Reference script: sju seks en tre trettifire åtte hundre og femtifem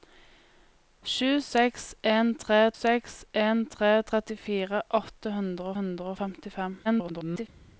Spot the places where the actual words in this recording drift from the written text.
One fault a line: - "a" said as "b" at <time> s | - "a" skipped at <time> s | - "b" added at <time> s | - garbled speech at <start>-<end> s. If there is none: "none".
- "seks en tre" added at 2.8 s
- "hundre" added at 5.8 s
- garbled speech at 6.8-7.5 s